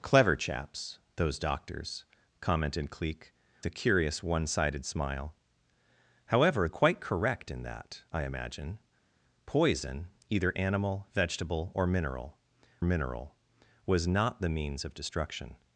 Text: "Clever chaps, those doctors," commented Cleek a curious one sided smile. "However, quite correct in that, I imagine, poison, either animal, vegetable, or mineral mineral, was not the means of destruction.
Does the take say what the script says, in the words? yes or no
yes